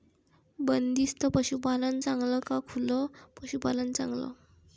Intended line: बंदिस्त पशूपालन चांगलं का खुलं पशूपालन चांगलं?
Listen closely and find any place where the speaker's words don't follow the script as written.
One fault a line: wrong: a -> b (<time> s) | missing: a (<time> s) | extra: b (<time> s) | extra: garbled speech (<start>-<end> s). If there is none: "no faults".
no faults